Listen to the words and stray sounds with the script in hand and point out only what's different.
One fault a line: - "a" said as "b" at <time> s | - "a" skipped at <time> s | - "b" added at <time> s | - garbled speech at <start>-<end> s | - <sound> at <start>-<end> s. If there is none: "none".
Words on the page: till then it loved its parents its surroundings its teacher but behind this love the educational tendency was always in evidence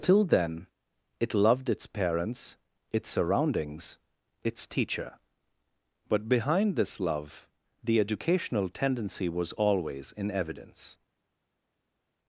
none